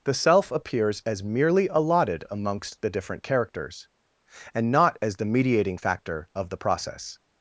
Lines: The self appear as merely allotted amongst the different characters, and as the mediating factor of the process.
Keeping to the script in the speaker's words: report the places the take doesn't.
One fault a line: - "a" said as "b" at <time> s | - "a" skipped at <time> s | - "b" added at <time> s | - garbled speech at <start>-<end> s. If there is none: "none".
- "appear" said as "appears" at 0.5 s
- "not" added at 4.7 s